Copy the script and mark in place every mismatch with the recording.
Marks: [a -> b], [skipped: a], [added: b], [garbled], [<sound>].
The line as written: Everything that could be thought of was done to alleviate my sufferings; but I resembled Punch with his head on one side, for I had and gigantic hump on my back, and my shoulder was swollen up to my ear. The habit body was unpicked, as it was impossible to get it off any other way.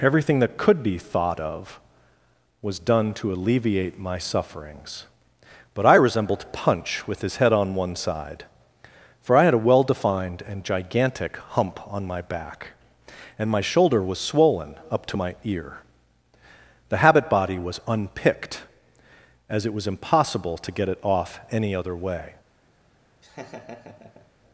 Everything that could be thought of was done to alleviate my sufferings; but I resembled Punch with his head on one side, for I had [added: a well defined] and gigantic hump on my back, and my shoulder was swollen up to my ear. The habit body was unpicked, as it was impossible to get it off any other way. [laugh]